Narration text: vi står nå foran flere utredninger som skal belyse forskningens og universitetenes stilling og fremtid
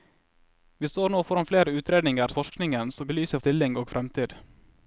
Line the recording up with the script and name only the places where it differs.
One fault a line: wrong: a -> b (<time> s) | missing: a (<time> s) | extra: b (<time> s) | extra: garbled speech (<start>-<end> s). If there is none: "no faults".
missing: som skal belyse (2.3 s)
wrong: universitetenes -> belyse (3.1 s)